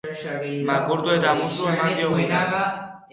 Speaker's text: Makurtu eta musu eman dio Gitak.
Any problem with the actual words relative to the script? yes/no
no